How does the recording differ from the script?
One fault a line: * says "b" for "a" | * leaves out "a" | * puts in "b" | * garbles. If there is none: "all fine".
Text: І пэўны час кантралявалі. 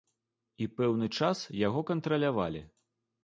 * puts in "яго"